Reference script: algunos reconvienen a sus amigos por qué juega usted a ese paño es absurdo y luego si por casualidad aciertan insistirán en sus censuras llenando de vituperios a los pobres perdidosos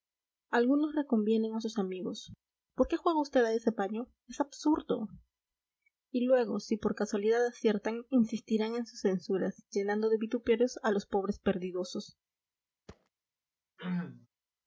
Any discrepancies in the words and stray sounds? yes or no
yes